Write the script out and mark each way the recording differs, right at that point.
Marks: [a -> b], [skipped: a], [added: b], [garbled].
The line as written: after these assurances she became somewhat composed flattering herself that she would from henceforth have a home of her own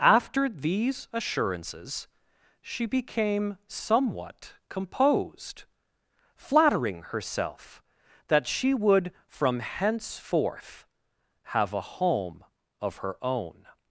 after these assurances she became somewhat composed flattering herself that she would from henceforth have a home of her own